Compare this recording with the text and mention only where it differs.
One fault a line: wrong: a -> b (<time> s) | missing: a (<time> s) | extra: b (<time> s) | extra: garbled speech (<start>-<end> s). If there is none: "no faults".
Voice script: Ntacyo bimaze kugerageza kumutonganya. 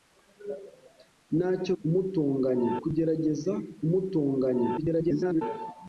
wrong: bimaze -> kumutonganya (1.8 s)
extra: garbled speech (4.8-5.4 s)